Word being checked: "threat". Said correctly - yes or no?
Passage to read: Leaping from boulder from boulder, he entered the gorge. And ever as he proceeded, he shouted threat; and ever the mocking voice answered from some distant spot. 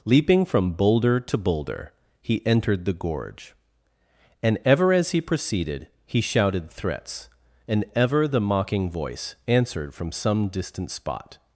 no